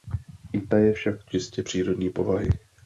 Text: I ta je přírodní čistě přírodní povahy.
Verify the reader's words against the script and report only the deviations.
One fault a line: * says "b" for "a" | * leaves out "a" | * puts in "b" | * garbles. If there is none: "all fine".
* says "však" for "přírodní"